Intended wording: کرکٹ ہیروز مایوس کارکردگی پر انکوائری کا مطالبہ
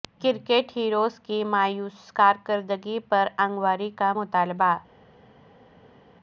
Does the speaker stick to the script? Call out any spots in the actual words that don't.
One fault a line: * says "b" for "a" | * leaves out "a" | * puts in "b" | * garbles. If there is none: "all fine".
* puts in "کی"